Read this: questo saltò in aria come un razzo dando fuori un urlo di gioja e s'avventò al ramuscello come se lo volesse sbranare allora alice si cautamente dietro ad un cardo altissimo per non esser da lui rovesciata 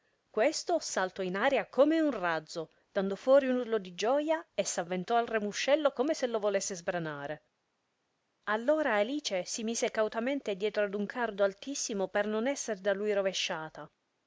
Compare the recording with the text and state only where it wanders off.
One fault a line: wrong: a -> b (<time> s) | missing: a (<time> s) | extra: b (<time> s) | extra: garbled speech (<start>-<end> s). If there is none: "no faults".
extra: mise (9.6 s)